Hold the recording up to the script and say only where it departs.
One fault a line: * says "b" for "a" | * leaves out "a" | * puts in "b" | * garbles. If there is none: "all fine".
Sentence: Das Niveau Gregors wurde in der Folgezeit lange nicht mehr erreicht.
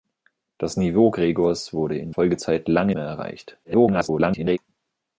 * leaves out "der"
* leaves out "nicht"
* garbles